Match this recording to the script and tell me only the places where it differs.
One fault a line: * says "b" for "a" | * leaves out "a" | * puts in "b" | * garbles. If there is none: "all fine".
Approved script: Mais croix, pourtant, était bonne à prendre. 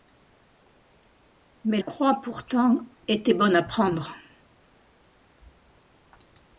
all fine